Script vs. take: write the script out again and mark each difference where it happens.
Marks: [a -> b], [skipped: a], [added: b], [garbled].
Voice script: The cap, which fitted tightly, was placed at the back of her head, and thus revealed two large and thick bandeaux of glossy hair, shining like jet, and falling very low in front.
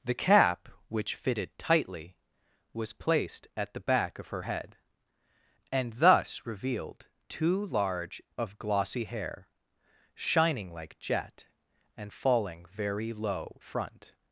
The cap, which fitted tightly, was placed at the back of her head, and thus revealed two large [skipped: and thick bandeaux] of glossy hair, shining like jet, and falling very low [skipped: in] front.